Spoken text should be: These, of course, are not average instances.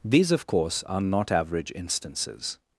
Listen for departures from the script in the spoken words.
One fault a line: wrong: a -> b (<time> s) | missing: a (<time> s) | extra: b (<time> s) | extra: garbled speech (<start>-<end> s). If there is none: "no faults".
no faults